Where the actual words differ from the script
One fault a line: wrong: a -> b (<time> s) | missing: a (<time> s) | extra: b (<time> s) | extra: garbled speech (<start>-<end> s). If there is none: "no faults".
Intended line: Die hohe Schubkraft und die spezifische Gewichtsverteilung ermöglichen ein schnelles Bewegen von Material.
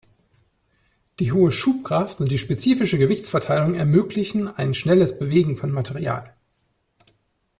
no faults